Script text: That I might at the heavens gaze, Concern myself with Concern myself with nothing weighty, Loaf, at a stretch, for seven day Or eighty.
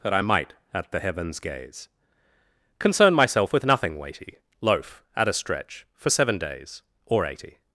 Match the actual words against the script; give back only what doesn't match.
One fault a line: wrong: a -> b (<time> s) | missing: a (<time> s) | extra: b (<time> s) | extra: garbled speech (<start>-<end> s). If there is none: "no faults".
missing: Concern myself with (3.7 s)
wrong: day -> days (6.4 s)